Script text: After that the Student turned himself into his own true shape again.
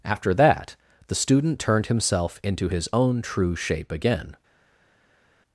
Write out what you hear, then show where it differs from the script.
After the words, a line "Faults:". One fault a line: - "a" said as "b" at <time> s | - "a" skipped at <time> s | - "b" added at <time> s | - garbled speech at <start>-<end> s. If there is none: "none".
After that the Student turned himself into his own true shape again.
Faults:
none